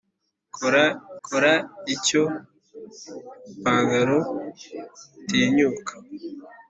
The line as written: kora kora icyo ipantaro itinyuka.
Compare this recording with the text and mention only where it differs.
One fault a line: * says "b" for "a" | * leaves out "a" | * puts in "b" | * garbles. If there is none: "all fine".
all fine